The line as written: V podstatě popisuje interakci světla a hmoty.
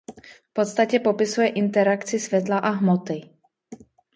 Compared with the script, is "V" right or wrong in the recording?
right